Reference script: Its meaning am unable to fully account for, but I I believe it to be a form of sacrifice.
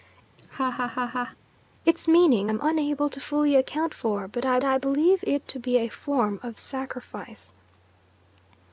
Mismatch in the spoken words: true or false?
false